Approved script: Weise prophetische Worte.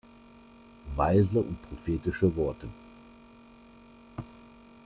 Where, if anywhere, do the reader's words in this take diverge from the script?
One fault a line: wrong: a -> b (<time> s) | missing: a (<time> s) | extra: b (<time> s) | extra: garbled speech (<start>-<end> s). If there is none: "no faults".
extra: und (1.4 s)